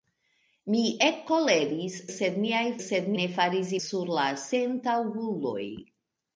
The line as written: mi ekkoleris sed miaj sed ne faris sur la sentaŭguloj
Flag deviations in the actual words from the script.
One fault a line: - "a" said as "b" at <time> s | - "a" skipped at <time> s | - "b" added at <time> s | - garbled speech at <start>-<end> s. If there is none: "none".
none